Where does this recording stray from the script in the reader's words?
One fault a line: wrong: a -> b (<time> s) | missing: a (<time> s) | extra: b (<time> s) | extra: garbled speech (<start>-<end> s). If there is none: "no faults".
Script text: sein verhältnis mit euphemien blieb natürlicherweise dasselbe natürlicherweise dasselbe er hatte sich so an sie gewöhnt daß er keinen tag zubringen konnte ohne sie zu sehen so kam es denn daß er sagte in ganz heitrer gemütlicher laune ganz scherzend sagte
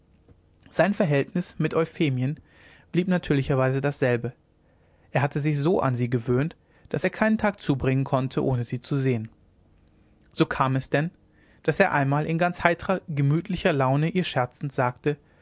missing: natürlicherweise dasselbe (4.3 s)
wrong: sagte -> einmal (11.9 s)
wrong: ganz -> ihr (14.1 s)